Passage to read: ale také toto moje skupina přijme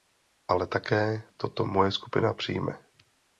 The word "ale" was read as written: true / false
true